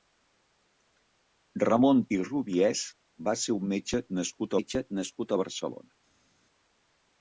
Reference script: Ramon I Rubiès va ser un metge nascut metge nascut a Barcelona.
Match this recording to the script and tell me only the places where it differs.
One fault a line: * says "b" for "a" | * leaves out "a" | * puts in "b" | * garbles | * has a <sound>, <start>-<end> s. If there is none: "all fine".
all fine